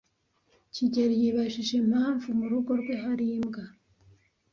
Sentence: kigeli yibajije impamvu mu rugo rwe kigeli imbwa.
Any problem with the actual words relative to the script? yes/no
yes